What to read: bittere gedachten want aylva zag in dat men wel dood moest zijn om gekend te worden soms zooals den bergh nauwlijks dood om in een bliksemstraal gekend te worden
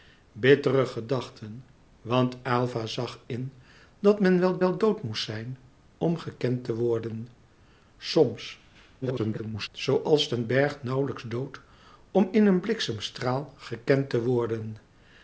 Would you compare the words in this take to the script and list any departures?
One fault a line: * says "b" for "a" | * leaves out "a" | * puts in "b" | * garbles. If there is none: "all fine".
* puts in "wel"
* garbles